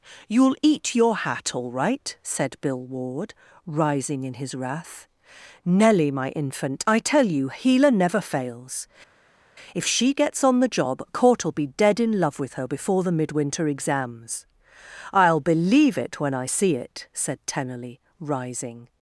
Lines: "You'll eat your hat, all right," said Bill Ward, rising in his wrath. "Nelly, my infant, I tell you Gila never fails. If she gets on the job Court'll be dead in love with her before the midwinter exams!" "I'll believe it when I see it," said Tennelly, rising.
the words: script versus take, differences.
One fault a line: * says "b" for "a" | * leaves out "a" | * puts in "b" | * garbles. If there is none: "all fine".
all fine